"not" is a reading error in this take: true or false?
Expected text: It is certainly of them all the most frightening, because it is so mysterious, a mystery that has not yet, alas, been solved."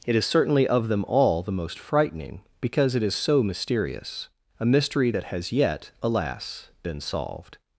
true